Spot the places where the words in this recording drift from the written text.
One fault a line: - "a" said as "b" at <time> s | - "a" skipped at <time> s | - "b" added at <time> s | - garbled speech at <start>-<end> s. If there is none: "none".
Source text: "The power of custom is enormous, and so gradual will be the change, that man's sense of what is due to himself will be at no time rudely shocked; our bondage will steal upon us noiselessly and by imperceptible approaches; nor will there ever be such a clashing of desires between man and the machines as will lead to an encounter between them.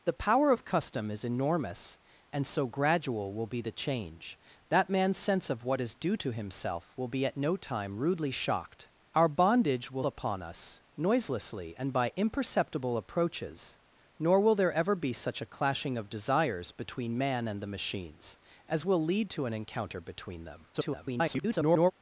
- "steal" skipped at 10.0 s
- garbled speech at 20.7-21.9 s